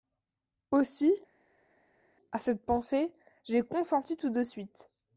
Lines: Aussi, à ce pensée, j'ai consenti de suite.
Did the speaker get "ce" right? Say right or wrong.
wrong